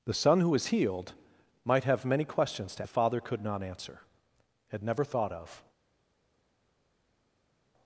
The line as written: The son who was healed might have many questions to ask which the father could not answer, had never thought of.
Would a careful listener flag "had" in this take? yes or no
no